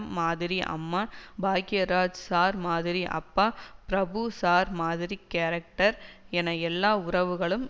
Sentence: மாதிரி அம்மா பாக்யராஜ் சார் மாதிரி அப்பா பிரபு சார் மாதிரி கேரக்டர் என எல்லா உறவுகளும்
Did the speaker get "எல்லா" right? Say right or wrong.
right